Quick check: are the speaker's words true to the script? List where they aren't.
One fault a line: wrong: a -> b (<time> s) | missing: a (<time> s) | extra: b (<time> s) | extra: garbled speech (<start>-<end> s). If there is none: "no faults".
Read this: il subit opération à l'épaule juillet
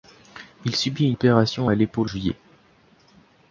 no faults